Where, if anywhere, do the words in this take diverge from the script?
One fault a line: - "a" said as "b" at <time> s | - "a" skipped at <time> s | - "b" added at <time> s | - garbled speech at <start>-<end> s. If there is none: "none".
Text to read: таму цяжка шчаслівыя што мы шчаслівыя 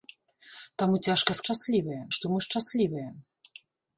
none